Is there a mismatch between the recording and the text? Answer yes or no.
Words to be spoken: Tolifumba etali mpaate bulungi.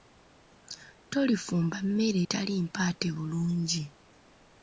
yes